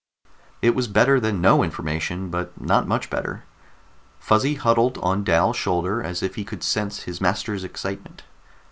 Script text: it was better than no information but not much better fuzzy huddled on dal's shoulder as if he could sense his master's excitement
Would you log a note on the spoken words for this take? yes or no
no